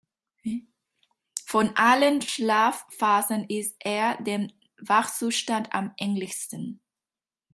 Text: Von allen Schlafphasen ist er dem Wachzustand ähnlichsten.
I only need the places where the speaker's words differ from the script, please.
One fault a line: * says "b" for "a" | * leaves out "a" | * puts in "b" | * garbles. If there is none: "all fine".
* puts in "am"